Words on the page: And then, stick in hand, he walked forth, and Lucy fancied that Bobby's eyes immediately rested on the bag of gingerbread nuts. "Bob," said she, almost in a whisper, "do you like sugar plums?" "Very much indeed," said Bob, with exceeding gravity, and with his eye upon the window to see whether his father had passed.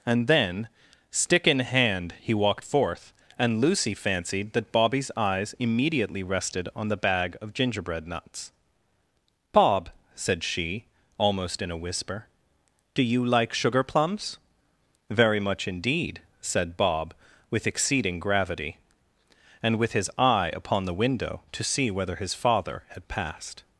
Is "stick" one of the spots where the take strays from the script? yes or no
no